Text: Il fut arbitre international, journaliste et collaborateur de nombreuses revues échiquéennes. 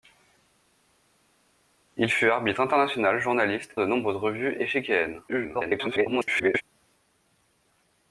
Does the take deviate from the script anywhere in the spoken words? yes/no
yes